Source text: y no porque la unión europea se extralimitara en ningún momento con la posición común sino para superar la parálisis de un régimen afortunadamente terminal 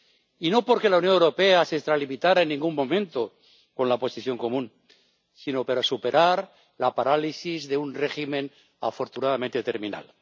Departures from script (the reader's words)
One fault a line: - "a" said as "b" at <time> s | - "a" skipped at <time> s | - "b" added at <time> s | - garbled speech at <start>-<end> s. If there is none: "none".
none